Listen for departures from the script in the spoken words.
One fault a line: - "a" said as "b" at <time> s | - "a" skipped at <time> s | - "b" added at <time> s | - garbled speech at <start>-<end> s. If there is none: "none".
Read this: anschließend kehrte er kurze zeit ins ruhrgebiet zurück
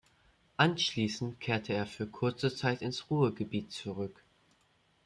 - "für" added at 1.9 s